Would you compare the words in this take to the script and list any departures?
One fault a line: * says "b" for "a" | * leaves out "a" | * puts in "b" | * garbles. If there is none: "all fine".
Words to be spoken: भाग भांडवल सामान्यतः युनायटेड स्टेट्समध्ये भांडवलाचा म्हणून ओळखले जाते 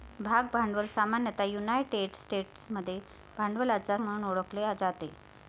all fine